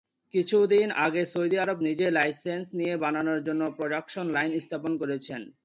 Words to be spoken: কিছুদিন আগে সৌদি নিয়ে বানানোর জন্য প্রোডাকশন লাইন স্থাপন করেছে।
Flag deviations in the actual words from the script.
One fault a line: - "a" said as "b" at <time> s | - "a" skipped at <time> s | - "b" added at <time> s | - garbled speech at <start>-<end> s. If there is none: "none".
- "আরব নিজেই লাইসেন্স" added at 1.6 s